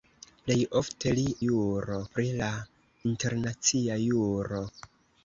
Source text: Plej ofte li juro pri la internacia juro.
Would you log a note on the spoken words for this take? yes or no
no